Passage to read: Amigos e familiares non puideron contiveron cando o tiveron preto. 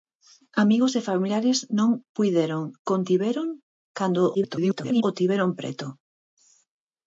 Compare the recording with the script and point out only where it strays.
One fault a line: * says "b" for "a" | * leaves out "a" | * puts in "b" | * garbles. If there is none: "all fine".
* garbles